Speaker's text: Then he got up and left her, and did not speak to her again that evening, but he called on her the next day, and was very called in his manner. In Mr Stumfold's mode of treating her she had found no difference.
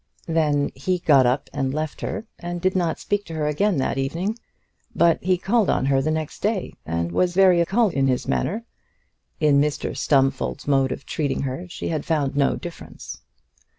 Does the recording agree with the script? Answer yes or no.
yes